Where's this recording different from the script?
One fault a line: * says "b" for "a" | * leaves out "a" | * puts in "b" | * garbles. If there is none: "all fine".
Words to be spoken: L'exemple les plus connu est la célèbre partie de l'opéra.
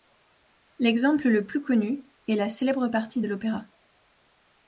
* says "le" for "les"